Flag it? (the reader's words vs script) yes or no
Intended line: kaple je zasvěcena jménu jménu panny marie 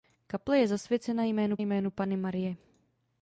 no